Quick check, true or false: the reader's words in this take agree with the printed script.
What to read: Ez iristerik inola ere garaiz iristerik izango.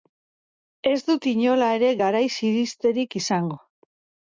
false